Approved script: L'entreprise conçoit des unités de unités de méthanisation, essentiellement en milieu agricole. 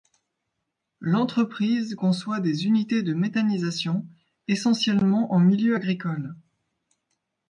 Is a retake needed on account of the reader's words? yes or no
yes